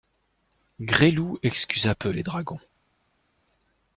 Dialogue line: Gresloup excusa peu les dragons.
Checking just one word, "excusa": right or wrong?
right